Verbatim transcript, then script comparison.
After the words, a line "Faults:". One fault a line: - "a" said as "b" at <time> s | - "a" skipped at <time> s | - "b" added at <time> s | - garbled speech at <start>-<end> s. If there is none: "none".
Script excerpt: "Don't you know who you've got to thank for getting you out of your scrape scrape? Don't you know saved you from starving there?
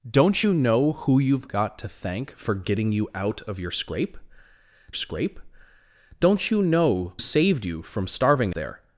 "Don't you know who you've got to thank for getting you out of your scrape scrape? Don't you know saved you from starving there?
Faults:
none